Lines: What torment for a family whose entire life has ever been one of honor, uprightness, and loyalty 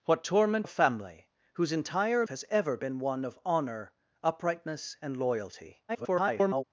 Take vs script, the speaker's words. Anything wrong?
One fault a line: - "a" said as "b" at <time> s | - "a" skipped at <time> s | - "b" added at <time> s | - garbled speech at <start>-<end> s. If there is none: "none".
- "for" skipped at 0.7 s
- "life" skipped at 2.3 s
- garbled speech at 5.9-6.6 s